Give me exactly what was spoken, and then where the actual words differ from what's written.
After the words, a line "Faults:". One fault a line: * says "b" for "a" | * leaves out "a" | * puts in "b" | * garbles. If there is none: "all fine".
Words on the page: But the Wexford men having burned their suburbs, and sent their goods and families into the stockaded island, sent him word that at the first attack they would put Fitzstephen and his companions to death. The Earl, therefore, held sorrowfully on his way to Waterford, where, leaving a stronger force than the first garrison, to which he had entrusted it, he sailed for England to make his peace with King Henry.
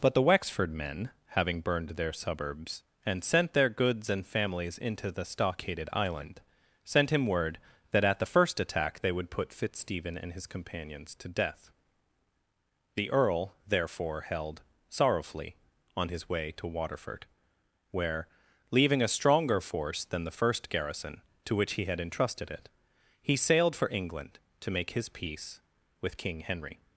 But the Wexford men having burned their suburbs, and sent their goods and families into the stockaded island, sent him word that at the first attack they would put Fitzstephen and his companions to death. The Earl, therefore, held sorrowfully on his way to Waterford, where, leaving a stronger force than the first garrison, to which he had entrusted it, he sailed for England to make his peace with King Henry.
Faults:
all fine